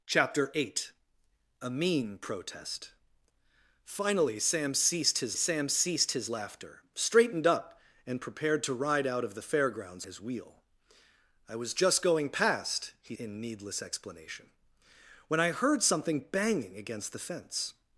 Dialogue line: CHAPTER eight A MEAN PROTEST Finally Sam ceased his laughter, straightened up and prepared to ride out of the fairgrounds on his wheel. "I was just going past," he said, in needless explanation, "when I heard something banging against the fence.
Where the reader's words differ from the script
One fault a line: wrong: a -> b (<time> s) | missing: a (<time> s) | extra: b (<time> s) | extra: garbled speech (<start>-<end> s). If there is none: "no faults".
extra: Sam ceased his (5.3 s)
missing: on (10.1 s)
missing: said (13.2 s)